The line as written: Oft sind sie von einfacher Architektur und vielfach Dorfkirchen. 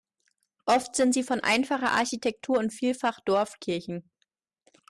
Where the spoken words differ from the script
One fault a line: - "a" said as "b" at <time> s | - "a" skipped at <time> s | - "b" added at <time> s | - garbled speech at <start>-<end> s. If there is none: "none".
none